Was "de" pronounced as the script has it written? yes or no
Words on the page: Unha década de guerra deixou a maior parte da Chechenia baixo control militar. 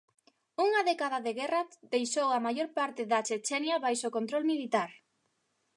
yes